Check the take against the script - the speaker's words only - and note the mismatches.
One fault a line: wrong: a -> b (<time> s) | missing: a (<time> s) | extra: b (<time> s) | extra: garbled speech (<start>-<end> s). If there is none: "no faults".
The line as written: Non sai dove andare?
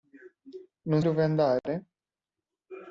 missing: sai (1.0 s)